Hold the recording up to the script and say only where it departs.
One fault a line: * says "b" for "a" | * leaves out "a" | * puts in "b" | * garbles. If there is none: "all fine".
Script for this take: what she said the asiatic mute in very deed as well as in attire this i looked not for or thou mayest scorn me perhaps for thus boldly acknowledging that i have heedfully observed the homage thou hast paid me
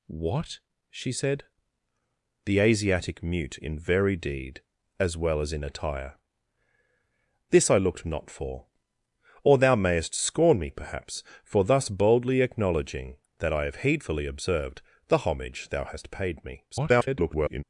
* garbles